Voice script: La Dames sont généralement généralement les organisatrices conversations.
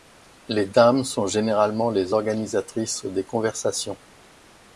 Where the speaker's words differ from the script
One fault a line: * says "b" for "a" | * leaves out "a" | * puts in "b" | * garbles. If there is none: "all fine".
* says "Les" for "La"
* leaves out "généralement"
* puts in "des"